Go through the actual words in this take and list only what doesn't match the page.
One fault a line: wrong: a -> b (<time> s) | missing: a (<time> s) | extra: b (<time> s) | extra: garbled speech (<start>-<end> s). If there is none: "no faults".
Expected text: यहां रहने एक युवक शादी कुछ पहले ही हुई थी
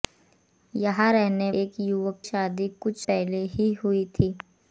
no faults